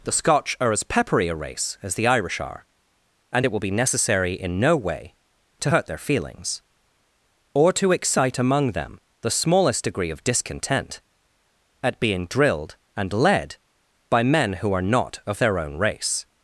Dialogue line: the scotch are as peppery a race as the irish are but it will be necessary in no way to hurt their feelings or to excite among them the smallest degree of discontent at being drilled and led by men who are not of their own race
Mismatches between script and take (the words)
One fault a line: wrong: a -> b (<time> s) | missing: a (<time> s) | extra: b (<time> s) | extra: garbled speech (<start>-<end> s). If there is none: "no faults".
wrong: but -> and (3.3 s)